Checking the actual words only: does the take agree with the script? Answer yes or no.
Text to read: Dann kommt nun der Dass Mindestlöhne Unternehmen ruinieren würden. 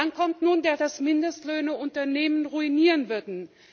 yes